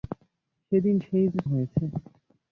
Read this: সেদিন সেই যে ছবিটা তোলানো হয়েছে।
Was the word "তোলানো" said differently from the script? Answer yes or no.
yes